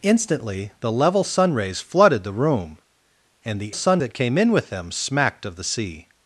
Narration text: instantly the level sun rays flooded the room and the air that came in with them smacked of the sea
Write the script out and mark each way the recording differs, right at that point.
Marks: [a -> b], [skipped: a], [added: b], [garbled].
instantly the level sun rays flooded the room and the [air -> sun] that came in with them smacked of the sea